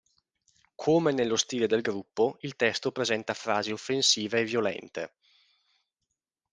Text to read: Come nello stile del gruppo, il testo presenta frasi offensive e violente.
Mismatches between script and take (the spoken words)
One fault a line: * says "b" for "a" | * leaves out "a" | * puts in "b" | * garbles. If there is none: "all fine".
all fine